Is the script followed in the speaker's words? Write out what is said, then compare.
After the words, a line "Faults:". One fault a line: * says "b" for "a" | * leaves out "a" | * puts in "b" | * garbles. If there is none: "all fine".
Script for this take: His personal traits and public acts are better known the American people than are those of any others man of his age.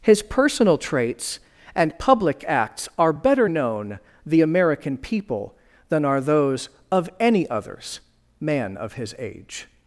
His personal traits and public acts are better known the American people than are those of any others man of his age.
Faults:
all fine